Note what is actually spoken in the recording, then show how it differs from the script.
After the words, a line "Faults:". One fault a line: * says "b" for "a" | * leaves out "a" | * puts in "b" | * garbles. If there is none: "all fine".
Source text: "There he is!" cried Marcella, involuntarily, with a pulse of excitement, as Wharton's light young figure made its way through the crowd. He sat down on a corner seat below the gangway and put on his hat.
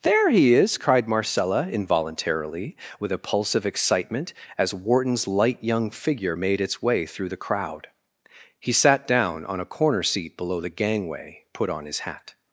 "There he is!" cried Marcella, involuntarily, with a pulse of excitement, as Wharton's light young figure made its way through the crowd. He sat down on a corner seat below the gangway put on his hat.
Faults:
* leaves out "and"